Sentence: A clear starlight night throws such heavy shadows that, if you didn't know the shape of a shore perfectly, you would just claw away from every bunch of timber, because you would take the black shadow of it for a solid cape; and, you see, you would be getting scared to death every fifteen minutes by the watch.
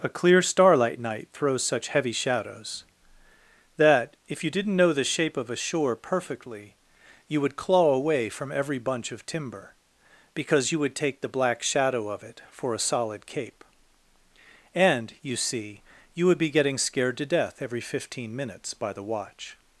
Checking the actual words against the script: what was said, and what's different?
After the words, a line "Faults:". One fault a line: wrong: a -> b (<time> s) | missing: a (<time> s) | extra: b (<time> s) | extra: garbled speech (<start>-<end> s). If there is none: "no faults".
A clear starlight night throws such heavy shadows that, if you didn't know the shape of a shore perfectly, you would claw away from every bunch of timber, because you would take the black shadow of it for a solid cape; and, you see, you would be getting scared to death every fifteen minutes by the watch.
Faults:
missing: just (7.5 s)